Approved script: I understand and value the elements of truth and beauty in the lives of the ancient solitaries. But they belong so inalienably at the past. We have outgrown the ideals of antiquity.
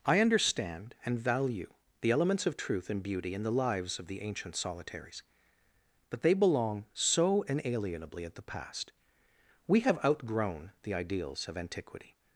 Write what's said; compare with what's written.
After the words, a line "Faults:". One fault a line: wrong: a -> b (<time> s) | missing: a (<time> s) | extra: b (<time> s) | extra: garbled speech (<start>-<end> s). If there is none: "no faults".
I understand and value the elements of truth and beauty in the lives of the ancient solitaries. But they belong so inalienably at the past. We have outgrown the ideals of antiquity.
Faults:
no faults